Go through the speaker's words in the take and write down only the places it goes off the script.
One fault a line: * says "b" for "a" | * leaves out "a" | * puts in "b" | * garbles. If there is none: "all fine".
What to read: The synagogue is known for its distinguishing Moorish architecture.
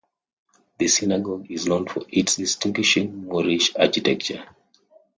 all fine